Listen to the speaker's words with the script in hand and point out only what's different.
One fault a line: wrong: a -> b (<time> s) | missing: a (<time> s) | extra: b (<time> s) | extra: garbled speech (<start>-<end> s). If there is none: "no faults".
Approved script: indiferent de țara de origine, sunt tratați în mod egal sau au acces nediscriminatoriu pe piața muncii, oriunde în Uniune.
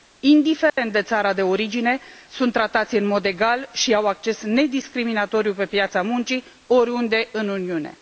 wrong: sau -> și (3.7 s)